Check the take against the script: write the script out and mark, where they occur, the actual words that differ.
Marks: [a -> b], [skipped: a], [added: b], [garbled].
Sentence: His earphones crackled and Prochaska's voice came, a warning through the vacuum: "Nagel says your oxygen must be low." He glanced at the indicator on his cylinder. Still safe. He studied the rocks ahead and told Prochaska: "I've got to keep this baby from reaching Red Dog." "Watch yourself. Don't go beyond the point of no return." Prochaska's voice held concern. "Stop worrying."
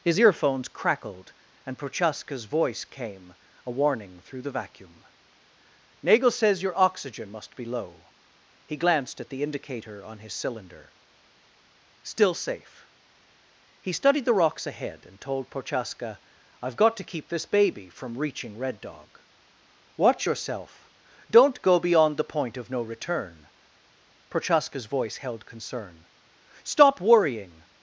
His earphones crackled and Prochaska's voice came, a warning through the vacuum: "Nagel says your oxygen must be low." He glanced at the indicator on his cylinder. Still safe. He studied the rocks ahead and told Prochaska: "I've got to keep this baby from reaching Red Dog." "Watch yourself. Don't go beyond the point of no return." Prochaska's voice held concern. "Stop worrying."